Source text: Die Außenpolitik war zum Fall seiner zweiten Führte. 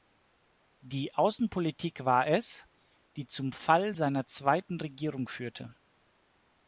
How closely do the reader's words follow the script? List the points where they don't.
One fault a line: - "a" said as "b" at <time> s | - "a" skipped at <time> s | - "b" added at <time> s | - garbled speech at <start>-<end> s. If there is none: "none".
- "es die" added at 2.2 s
- "Regierung" added at 4.8 s